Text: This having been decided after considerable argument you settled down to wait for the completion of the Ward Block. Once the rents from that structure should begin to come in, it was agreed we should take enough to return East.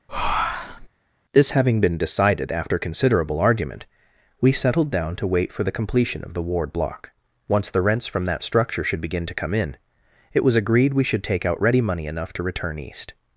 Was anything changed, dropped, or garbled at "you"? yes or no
yes